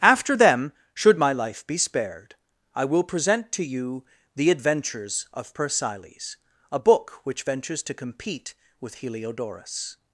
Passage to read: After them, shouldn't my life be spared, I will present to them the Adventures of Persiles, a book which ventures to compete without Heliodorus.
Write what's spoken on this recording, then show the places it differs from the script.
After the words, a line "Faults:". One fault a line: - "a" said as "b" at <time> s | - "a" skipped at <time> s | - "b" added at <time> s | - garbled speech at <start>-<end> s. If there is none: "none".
After them, should my life be spared, I will present to you the Adventures of Persiles, a book which ventures to compete with Heliodorus.
Faults:
- "shouldn't" said as "should" at 0.9 s
- "them" said as "you" at 3.6 s
- "without" said as "with" at 8.8 s